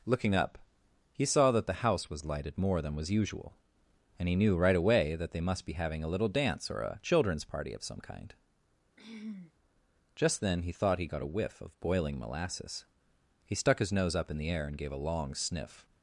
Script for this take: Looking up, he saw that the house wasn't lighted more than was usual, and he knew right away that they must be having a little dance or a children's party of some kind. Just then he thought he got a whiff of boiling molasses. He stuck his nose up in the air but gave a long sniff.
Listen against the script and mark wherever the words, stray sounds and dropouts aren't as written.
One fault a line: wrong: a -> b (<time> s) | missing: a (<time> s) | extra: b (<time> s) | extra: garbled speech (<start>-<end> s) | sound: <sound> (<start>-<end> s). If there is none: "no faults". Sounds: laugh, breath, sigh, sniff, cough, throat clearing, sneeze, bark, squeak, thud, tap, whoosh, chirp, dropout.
wrong: wasn't -> was (2.1 s)
sound: throat clearing (9.0-9.5 s)
wrong: but -> and (14.7 s)